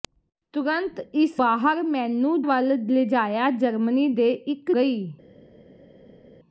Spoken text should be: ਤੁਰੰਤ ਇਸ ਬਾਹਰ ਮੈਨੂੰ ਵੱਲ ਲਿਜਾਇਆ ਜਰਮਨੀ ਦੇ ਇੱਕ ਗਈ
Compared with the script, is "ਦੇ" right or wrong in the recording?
right